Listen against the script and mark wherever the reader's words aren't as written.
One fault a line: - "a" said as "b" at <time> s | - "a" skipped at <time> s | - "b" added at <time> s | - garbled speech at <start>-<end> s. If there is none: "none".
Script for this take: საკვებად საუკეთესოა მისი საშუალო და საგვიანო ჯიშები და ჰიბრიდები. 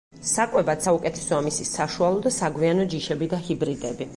none